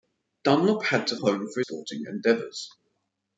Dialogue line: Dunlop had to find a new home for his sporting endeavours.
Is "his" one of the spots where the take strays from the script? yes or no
yes